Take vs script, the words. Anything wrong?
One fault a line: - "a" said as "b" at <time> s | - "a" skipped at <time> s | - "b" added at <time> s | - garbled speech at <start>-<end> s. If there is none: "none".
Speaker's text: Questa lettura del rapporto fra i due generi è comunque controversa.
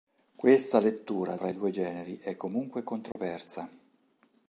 - "del rapporto" skipped at 1.4 s